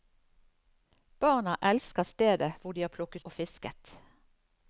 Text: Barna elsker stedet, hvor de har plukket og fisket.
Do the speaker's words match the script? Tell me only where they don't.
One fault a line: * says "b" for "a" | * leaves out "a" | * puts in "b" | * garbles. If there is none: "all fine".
all fine